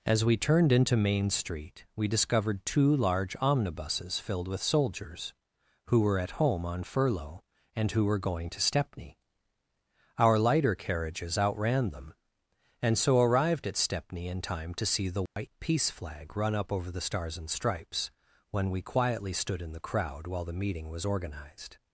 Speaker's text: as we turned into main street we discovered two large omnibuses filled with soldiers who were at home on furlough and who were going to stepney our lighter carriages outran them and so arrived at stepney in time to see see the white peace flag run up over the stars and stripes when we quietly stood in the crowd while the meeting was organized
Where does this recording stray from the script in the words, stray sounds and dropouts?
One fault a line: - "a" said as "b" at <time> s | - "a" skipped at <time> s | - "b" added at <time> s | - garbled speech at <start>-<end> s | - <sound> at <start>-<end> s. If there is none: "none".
- "see" skipped at 15.1 s
- dropout at 15.3-15.4 s